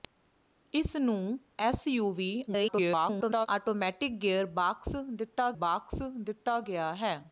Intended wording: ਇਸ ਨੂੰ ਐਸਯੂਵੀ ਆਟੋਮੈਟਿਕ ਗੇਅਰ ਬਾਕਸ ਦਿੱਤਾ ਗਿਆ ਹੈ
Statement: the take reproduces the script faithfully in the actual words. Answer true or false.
false